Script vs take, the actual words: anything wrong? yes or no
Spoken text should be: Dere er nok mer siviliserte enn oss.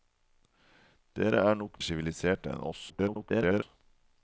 yes